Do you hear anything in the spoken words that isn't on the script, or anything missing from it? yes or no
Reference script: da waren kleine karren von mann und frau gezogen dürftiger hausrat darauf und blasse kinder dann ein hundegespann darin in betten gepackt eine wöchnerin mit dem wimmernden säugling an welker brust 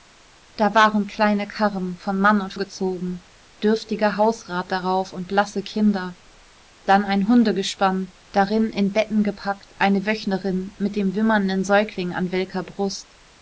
yes